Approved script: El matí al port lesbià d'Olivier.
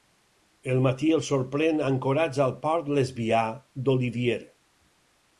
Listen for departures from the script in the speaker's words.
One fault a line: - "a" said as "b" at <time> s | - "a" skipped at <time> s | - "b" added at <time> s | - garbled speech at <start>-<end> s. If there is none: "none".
- "els sorprèn ancorats" added at 1.2 s